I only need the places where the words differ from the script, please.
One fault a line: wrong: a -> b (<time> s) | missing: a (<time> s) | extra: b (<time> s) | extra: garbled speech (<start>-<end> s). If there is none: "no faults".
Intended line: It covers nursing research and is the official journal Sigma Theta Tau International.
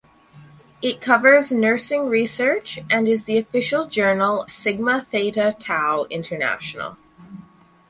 no faults